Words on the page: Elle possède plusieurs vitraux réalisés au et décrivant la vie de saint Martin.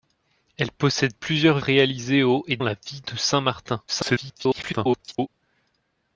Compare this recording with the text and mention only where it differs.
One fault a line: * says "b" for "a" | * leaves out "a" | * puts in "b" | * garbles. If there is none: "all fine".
* leaves out "vitraux"
* leaves out "décrivant"
* garbles